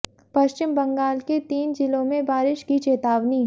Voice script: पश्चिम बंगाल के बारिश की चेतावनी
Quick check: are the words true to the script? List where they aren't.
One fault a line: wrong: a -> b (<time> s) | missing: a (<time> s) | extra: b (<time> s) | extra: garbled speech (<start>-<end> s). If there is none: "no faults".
extra: तीन जिलों में (1.5 s)